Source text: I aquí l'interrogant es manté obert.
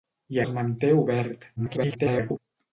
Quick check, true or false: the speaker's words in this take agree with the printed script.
false